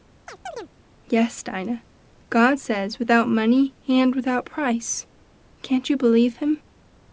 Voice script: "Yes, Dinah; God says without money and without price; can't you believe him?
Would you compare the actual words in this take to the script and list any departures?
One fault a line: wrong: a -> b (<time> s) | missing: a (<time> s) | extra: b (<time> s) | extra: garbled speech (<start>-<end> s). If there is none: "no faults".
no faults